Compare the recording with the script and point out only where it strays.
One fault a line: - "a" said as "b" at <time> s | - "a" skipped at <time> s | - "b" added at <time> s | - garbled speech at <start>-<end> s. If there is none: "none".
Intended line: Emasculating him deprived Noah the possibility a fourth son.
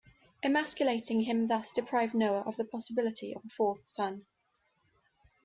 - "thus" added at 1.5 s
- "of" added at 2.4 s
- "of" added at 3.3 s